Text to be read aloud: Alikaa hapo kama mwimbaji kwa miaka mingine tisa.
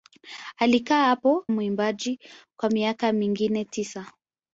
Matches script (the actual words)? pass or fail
fail